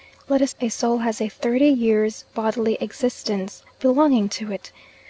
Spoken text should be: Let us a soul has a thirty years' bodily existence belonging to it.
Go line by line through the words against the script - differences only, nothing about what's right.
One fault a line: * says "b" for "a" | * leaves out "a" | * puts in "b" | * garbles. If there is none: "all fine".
all fine